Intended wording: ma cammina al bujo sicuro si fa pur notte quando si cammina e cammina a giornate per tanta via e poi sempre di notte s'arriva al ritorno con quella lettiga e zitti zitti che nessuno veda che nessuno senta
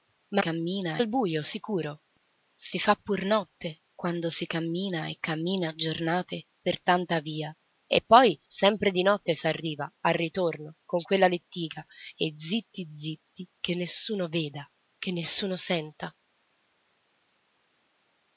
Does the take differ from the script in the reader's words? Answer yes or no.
no